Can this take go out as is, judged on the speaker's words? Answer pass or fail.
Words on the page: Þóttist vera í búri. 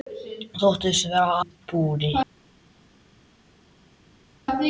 pass